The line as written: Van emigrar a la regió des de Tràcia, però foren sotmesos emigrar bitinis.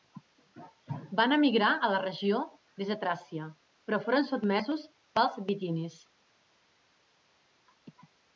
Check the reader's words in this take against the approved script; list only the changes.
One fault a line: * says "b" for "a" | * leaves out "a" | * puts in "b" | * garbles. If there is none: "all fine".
* says "pels" for "emigrar"